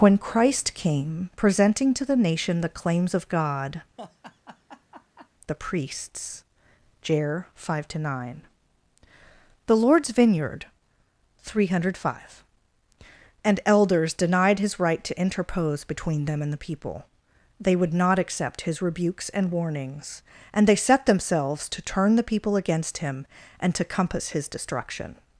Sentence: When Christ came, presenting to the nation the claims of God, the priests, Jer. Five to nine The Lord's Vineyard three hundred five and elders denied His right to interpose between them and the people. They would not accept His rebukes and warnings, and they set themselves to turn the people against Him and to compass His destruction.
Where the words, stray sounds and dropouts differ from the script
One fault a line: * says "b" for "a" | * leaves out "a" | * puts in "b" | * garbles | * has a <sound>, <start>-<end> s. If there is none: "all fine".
* has a laugh, 4.0-5.3 s